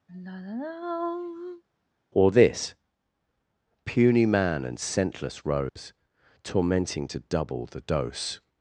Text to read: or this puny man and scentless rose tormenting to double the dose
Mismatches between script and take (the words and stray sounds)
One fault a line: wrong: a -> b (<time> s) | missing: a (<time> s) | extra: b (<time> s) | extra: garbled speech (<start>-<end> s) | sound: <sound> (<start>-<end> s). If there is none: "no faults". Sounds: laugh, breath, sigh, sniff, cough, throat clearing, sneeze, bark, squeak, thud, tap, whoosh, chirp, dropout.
sound: sigh (0.1-1.6 s)
sound: dropout (5.7-5.8 s)